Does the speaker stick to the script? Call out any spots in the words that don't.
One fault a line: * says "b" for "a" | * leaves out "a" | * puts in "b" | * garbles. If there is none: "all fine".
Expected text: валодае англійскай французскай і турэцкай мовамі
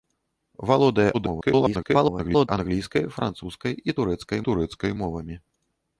* garbles
* puts in "турэцкай"